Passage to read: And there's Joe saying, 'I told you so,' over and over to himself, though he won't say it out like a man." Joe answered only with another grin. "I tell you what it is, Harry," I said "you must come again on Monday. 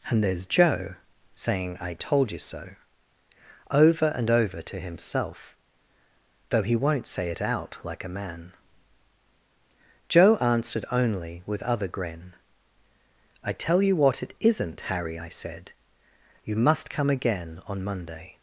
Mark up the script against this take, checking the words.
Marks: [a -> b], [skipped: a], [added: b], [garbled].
And there's Joe saying, 'I told you so,' over and over to himself, though he won't say it out like a man." Joe answered only with [another -> other] grin. "I tell you what it [is, -> isn't] Harry," I said "you must come again on Monday.